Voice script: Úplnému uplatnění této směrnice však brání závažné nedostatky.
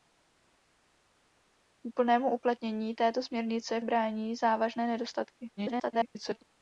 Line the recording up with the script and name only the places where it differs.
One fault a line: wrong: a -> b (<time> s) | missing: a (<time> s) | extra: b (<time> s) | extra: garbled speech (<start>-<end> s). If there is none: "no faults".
missing: však (3.8 s)
extra: garbled speech (5.6-6.4 s)